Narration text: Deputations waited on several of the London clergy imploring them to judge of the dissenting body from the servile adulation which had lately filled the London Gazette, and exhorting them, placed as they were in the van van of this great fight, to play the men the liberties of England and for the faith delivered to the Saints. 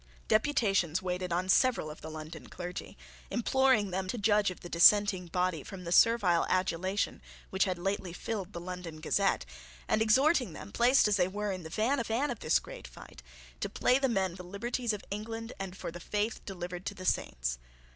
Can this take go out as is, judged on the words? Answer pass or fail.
pass